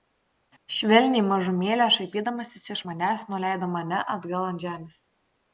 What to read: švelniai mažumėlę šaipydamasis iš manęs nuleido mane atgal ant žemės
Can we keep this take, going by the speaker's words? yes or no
yes